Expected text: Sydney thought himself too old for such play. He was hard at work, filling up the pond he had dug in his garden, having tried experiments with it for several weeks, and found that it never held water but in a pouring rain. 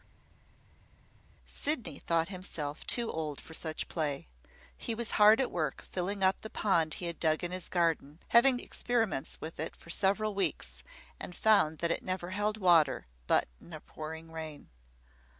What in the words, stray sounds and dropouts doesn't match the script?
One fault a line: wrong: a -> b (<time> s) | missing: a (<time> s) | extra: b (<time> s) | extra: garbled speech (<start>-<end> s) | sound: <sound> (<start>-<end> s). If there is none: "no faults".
missing: tried (8.6 s)